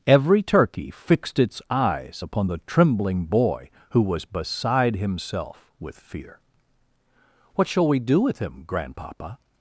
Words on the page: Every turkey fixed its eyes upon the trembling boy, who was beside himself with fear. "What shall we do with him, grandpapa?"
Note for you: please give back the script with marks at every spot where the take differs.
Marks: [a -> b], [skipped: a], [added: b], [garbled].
Every turkey fixed its eyes upon the trembling boy, who was beside himself with fear. "What shall we do with him, grandpapa?"